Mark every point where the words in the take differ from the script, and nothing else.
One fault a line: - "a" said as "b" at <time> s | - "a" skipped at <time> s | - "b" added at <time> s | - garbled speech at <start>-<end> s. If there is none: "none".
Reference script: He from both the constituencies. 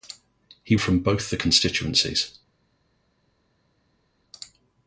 none